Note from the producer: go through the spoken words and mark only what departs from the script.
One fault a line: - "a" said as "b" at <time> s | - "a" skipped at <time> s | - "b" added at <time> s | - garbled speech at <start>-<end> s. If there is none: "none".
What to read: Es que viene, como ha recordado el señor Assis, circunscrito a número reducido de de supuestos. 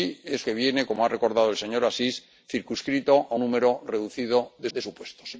none